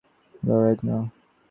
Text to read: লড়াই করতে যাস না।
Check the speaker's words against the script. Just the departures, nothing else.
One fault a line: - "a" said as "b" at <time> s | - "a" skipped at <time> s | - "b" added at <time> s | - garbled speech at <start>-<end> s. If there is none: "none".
- "করতে যাস" skipped at 0.8 s